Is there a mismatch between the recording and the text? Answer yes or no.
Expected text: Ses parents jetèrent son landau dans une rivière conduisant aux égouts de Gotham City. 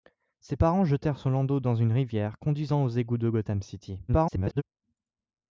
yes